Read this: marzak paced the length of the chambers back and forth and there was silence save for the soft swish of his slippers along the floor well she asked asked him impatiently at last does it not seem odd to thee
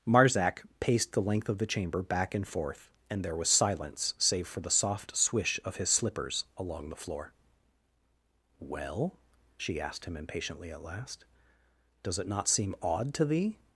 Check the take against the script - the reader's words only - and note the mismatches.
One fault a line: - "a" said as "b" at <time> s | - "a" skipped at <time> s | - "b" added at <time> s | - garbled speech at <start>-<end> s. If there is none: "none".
- "chambers" said as "chamber" at 1.7 s
- "asked" skipped at 10.1 s